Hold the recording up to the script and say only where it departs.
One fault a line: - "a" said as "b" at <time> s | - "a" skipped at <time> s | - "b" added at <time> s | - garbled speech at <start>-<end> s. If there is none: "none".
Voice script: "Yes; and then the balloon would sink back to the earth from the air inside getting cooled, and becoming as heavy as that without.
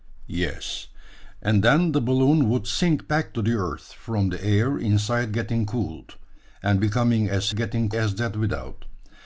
- "heavy" said as "getting" at 7.5 s